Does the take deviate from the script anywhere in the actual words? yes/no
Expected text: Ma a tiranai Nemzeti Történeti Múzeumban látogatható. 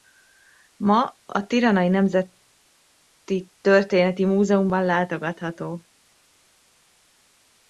no